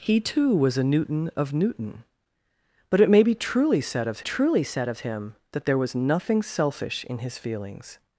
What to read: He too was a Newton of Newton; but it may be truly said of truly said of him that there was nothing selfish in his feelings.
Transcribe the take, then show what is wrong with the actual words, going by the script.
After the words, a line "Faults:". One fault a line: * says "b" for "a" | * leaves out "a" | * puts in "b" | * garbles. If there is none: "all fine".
He too was a Newton of Newton; but it may be truly said of truly said of him that there was nothing selfish in his feelings.
Faults:
all fine